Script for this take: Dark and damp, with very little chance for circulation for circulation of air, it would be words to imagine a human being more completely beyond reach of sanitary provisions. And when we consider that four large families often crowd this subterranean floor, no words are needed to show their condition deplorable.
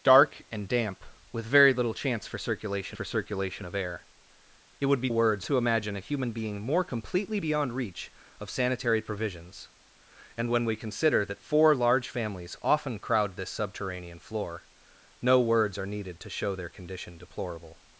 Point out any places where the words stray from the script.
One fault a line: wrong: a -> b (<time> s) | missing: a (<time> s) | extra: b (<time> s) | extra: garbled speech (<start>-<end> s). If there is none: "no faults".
no faults